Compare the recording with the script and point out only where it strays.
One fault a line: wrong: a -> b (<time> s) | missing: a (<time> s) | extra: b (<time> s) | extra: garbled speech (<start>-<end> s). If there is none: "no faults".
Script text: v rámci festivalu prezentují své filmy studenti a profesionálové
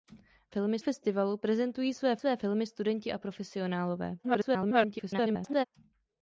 wrong: rámci -> filmy (0.5 s)
extra: své (2.2 s)
extra: garbled speech (4.2-5.7 s)